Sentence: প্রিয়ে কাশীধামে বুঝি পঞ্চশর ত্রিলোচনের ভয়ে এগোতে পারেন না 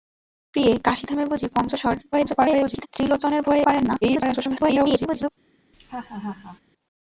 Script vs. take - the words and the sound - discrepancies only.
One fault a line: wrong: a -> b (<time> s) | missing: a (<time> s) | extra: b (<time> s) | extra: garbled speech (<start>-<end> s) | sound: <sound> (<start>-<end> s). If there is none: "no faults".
extra: garbled speech (2.1-2.9 s)
missing: এগোতে (3.7 s)
extra: garbled speech (4.0-5.3 s)
sound: laugh (5.7-6.6 s)